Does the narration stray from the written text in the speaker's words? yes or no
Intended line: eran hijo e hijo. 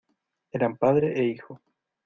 yes